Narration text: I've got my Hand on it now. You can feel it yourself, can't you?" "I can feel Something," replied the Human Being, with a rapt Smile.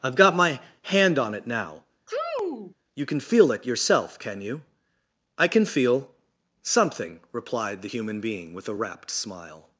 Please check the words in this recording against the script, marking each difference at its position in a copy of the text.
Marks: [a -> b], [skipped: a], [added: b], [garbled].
I've got my Hand on it now. You can feel it yourself, [can't -> can] you?" "I can feel Something," replied the Human Being, with a rapt Smile.